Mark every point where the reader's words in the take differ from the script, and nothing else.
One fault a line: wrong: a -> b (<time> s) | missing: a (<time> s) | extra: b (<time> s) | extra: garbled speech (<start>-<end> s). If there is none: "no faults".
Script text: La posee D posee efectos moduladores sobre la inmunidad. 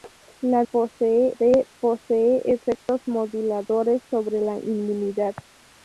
no faults